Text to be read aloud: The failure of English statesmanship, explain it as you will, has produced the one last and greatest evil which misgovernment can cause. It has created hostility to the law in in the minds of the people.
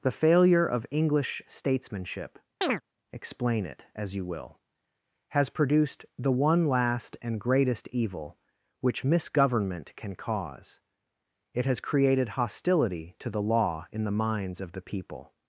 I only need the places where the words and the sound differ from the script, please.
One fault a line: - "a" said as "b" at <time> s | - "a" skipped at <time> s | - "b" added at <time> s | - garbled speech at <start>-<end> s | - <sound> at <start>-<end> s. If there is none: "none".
- chirp at 2.6-2.8 s
- "in" skipped at 14.0 s